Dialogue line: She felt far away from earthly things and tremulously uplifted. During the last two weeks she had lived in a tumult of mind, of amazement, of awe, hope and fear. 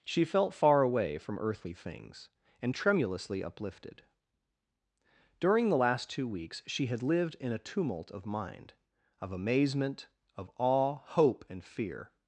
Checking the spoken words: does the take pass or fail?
pass